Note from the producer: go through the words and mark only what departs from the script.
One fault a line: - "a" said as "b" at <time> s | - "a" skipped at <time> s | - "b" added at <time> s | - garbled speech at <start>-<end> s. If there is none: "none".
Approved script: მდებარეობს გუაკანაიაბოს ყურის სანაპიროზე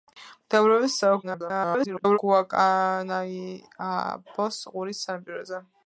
- garbled speech at 1.2-2.2 s